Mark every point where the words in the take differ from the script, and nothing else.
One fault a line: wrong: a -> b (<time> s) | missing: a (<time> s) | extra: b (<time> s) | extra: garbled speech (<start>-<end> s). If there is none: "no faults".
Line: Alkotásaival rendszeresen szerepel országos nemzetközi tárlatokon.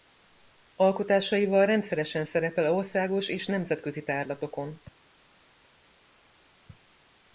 extra: és (3.3 s)